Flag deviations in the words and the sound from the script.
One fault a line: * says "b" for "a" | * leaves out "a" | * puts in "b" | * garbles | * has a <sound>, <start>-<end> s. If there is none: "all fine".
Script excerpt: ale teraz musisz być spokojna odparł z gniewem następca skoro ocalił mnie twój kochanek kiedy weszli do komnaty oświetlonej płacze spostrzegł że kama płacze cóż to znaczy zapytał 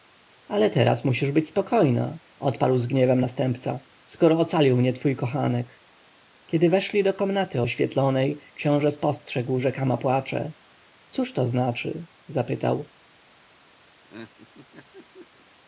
* says "książę" for "płacze"
* has a laugh, 13.9-15.5 s